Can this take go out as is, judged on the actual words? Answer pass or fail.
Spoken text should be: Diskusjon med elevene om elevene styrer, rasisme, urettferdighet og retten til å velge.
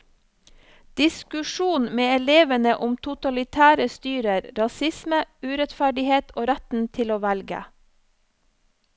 fail